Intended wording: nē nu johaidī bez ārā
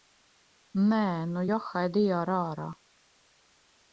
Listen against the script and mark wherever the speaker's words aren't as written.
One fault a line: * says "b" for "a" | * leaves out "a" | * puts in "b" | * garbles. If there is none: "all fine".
* says "ar" for "bez"